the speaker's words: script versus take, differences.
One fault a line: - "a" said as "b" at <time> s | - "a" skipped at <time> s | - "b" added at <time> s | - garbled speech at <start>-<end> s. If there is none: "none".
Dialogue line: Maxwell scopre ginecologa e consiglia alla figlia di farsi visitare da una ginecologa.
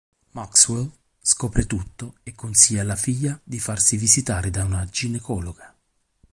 - "ginecologa" said as "tutto" at 1.7 s